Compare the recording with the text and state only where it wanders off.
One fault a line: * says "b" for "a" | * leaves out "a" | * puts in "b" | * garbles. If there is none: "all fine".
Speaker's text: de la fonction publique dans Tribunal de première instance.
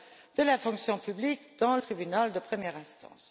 all fine